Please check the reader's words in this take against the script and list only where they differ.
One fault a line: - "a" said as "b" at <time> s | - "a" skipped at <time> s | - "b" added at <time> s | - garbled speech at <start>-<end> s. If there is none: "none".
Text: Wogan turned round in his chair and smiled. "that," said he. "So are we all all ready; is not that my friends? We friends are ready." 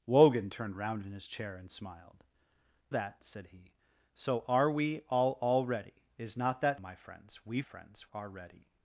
none